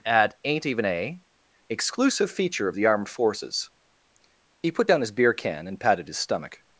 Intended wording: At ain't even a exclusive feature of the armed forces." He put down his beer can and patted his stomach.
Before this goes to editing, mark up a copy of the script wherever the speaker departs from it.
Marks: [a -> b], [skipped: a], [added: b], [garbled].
At ain't even a exclusive feature of the armed forces." He put down his beer can and patted his stomach.